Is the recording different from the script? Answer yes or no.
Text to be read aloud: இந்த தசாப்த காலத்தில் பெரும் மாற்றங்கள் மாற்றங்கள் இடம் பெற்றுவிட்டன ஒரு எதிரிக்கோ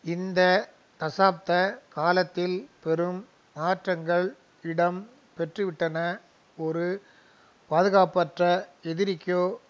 yes